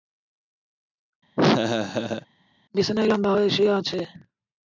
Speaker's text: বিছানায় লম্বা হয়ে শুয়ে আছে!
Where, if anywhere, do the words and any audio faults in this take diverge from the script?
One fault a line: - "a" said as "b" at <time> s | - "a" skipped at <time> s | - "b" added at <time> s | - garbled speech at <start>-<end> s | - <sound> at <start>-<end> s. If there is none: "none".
- laugh at 1.4-2.3 s